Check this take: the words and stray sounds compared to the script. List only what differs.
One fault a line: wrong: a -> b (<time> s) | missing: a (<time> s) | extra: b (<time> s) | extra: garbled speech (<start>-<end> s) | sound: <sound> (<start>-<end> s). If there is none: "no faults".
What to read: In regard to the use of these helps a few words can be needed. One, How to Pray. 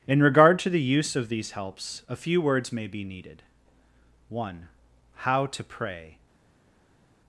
wrong: can -> may (2.7 s)